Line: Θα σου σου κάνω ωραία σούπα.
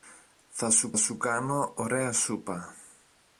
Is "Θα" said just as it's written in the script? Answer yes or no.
yes